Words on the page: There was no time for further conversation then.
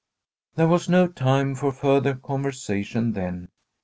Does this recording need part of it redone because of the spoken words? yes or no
no